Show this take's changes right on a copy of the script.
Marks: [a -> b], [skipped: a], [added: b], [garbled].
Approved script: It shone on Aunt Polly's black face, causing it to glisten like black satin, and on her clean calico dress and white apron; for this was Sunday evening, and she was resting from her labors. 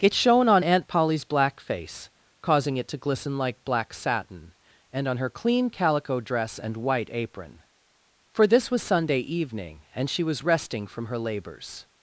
It shone on Aunt Polly's black face, causing it to glisten like black satin, and on her clean calico dress and white apron; for this was Sunday evening, and she was resting from her labors.